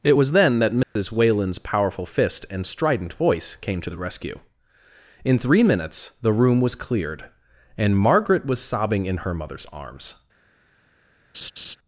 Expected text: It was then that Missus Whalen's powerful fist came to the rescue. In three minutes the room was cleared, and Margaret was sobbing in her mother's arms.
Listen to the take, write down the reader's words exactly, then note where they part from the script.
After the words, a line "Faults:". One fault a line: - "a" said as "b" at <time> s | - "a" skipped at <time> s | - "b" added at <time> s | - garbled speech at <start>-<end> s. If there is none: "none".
It was then that Missus Whalen's powerful fist and strident voice came to the rescue. In three minutes the room was cleared, and Margaret was sobbing in her mother's arms.
Faults:
- "and strident voice" added at 2.5 s